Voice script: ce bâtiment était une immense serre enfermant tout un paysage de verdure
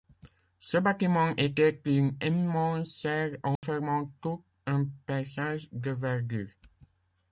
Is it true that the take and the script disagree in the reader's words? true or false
false